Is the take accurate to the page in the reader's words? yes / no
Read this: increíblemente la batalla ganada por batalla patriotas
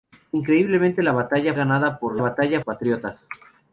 yes